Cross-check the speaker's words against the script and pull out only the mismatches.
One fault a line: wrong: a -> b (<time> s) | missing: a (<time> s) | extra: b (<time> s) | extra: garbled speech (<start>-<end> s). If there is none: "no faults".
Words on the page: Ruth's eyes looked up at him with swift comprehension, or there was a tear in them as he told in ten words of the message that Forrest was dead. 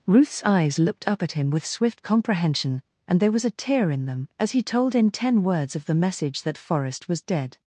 wrong: or -> and (3.1 s)